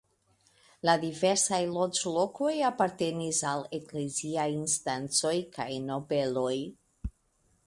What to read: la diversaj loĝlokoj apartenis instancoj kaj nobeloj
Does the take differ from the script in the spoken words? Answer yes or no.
yes